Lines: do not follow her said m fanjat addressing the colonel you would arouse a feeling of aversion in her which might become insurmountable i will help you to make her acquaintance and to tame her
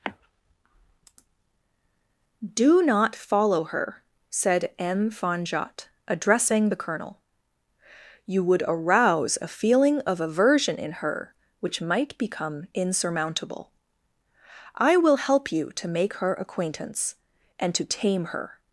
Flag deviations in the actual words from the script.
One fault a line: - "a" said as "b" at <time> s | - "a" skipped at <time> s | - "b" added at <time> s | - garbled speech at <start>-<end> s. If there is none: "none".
none